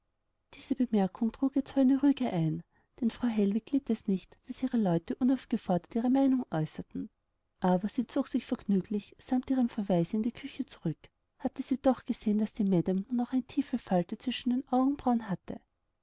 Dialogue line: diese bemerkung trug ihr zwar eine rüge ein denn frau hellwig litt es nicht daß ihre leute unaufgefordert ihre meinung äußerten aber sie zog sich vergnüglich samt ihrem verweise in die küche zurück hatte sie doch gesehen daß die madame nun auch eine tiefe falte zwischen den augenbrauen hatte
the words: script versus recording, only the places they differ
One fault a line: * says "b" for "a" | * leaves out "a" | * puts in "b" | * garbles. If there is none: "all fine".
all fine